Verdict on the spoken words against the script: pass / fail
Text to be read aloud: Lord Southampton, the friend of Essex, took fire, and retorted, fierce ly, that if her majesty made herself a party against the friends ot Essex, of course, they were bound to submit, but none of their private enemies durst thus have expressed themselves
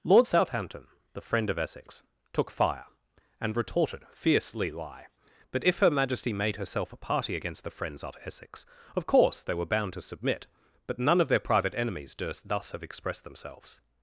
fail